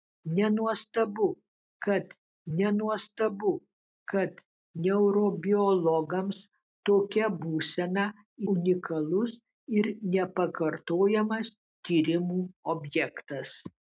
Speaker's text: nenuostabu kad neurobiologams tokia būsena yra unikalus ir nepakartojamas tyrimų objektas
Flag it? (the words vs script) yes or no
yes